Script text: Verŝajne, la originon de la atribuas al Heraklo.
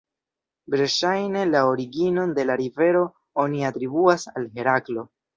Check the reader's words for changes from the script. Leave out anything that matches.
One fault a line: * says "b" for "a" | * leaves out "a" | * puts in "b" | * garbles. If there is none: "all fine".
* puts in "rivero oni"